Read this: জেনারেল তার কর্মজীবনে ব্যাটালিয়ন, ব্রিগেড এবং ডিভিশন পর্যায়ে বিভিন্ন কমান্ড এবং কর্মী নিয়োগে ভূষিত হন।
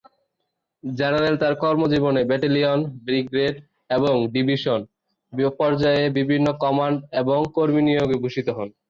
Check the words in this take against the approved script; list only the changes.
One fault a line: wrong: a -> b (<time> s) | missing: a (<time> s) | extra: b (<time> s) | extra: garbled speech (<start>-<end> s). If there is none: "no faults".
no faults